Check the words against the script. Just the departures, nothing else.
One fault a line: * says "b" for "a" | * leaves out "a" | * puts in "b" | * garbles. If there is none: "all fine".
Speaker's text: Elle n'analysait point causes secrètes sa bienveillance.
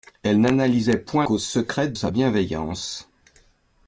all fine